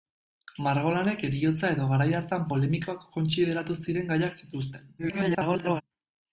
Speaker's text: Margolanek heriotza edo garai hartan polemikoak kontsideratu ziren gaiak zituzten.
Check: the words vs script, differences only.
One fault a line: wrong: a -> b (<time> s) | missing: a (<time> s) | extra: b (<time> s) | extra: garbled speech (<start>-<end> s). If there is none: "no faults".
extra: garbled speech (5.0-5.8 s)